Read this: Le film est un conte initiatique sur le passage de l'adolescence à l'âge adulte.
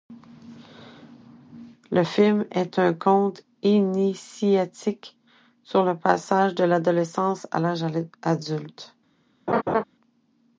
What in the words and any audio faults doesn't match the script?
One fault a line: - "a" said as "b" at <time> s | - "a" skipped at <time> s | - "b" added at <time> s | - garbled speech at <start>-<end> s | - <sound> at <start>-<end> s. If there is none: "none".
- laugh at 9.5-9.8 s